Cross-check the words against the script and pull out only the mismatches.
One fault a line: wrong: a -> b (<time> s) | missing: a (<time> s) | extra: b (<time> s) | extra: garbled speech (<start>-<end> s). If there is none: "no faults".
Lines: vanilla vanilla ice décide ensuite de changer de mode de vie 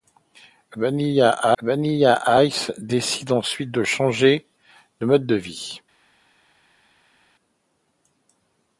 no faults